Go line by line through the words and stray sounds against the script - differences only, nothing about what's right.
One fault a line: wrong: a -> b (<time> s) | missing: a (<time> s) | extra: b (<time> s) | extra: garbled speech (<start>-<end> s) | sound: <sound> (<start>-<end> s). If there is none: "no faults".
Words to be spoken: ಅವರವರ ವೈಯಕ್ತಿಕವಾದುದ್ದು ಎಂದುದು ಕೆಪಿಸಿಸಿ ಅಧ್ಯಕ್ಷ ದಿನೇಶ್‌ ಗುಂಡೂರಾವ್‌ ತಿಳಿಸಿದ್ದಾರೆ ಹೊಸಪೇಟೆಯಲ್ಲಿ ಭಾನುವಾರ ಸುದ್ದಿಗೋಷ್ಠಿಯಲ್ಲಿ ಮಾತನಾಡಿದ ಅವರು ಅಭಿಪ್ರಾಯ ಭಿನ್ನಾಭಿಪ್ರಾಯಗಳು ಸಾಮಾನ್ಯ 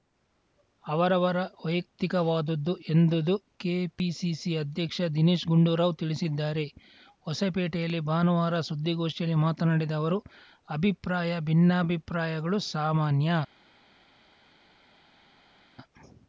no faults